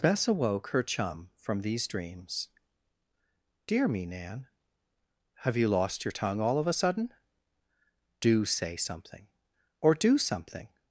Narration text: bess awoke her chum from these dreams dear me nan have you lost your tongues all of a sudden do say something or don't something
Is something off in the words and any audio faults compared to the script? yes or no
yes